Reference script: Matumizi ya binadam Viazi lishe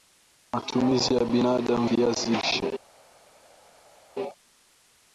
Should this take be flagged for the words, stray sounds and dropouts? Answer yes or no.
no